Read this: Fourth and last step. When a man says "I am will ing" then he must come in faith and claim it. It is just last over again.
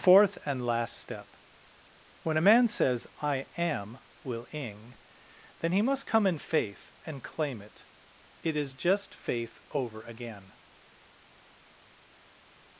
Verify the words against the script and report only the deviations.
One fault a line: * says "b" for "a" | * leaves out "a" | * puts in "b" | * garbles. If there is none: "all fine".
* says "faith" for "last"